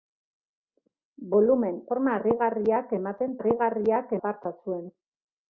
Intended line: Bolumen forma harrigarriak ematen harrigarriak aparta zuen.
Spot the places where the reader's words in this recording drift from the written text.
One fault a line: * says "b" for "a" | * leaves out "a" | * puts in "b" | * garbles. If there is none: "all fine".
all fine